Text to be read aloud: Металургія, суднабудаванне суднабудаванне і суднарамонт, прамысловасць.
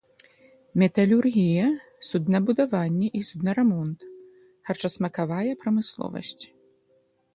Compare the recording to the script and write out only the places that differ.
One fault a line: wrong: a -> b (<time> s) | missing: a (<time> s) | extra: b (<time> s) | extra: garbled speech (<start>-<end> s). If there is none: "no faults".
missing: суднабудаванне (3.1 s)
extra: харчасмакавая (4.7 s)